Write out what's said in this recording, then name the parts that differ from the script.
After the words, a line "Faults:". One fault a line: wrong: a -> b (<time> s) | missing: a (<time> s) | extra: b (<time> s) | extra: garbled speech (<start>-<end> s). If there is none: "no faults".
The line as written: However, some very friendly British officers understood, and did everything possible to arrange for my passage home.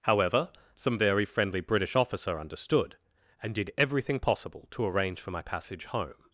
However, some very friendly British officer understood, and did everything possible to arrange for my passage home.
Faults:
wrong: officers -> officer (2.0 s)